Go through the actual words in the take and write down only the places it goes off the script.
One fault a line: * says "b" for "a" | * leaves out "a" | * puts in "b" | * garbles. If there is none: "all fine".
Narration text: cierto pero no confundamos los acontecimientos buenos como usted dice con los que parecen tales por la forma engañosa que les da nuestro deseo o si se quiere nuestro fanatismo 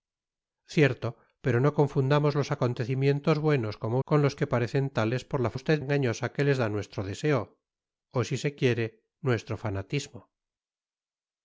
* leaves out "usted dice"
* says "usted" for "forma"